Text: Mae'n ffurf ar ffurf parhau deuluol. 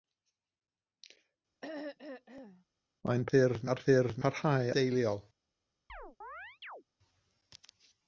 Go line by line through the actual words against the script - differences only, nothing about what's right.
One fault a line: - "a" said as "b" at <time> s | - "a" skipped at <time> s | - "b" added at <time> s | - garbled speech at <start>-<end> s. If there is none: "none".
none